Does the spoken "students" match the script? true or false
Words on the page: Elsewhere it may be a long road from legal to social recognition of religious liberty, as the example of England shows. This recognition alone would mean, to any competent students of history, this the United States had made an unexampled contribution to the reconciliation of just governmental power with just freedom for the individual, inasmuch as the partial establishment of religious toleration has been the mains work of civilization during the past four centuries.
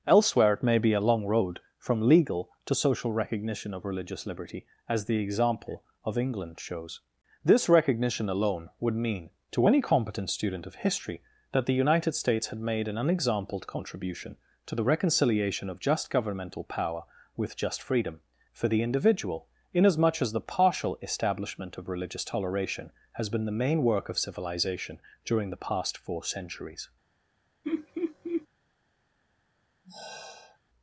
false